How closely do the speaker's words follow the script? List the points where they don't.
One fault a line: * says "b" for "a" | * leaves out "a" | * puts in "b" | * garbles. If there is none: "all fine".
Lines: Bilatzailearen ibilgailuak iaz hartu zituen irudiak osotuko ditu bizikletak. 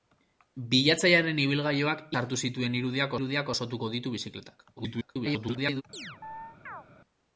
* leaves out "iaz"
* puts in "irudiak"
* garbles